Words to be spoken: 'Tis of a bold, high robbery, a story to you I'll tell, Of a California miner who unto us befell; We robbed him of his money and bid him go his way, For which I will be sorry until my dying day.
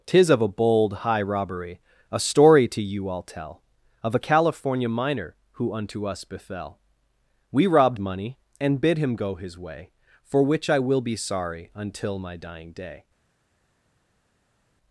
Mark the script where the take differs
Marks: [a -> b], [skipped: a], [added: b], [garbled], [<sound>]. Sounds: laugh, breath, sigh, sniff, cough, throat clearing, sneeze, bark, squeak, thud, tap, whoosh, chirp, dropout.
'Tis of a bold, high robbery, a story to you I'll tell, Of a California miner who unto us befell; We robbed [skipped: him of his] money and bid him go his way, For which I will be sorry until my dying day.